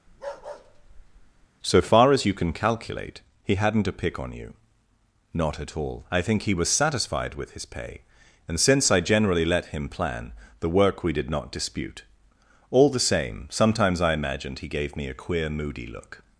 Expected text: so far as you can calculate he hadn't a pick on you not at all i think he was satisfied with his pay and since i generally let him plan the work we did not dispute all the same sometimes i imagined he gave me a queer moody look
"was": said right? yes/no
yes